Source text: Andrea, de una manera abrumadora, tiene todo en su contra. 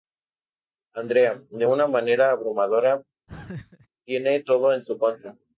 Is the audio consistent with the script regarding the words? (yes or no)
yes